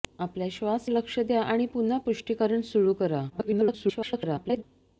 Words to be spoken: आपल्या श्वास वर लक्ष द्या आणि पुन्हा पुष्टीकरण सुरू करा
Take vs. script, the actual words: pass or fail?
fail